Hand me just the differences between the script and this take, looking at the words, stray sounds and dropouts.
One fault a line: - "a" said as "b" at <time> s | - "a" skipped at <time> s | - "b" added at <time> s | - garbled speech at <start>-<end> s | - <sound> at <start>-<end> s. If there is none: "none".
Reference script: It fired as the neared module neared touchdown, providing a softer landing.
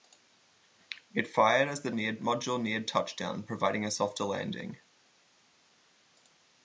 none